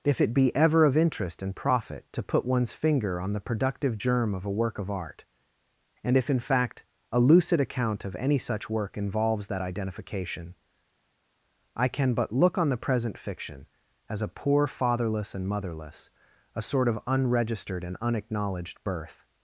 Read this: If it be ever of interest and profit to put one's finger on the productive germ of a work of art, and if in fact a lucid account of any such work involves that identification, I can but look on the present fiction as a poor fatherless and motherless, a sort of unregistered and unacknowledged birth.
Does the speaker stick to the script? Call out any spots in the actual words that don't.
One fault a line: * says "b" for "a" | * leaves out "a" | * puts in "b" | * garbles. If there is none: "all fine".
all fine